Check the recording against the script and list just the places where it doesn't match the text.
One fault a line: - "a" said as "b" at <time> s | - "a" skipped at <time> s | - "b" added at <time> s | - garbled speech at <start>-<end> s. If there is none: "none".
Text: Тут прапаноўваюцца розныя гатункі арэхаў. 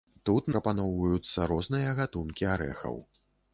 none